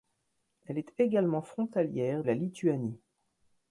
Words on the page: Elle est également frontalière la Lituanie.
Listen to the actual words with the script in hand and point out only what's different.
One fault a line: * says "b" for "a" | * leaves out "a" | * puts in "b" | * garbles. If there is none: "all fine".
all fine